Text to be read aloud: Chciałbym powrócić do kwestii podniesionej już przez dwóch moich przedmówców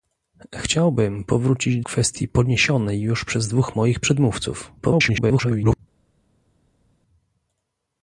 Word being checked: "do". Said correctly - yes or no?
no